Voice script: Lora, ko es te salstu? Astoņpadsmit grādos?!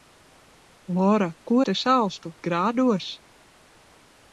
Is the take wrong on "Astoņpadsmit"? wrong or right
wrong